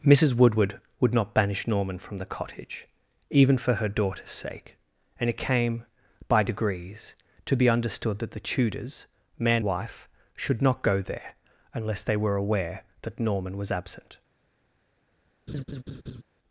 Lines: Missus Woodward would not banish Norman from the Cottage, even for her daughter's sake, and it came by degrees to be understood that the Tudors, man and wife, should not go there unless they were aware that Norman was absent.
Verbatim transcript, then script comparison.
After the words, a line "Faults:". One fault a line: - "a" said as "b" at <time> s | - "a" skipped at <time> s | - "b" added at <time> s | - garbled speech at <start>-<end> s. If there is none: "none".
Missus Woodward would not banish Norman from the Cottage, even for her daughter's sake, and it came by degrees to be understood that the Tudors, man wife, should not go there unless they were aware that Norman was absent.
Faults:
- "and" skipped at 9.6 s